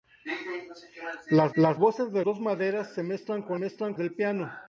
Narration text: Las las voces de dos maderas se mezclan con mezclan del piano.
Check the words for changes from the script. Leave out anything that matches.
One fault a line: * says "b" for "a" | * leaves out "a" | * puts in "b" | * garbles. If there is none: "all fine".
all fine